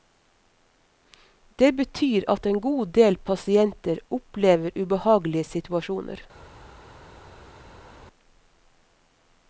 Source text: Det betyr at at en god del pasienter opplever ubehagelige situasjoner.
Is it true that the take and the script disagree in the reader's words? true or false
true